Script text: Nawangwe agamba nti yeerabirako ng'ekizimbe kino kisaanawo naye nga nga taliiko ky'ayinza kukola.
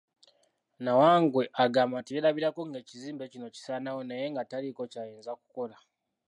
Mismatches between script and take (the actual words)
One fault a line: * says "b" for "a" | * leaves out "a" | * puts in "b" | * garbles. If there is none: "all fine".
* leaves out "nga"